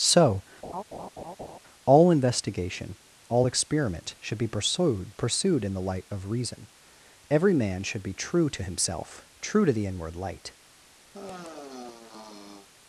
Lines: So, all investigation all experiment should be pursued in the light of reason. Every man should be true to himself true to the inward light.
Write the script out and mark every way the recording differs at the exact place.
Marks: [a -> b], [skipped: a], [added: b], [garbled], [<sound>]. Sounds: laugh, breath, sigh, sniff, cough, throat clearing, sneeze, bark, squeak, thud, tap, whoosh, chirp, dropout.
So, [laugh] all investigation all experiment should be pursued [added: pursued] in the light of reason. Every man should be true to himself true to the inward light. [sigh]